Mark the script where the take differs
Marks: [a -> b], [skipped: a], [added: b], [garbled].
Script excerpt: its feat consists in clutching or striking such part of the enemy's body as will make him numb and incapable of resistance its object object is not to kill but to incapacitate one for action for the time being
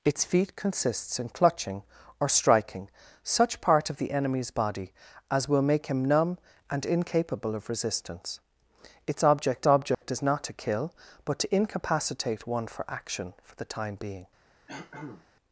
its feat consists in clutching or striking such part of the enemy's body as will make him numb and incapable of resistance its object object is not to kill but to incapacitate one for action for the time being